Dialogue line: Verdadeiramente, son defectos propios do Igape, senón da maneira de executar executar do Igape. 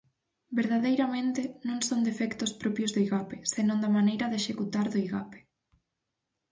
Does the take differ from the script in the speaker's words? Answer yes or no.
yes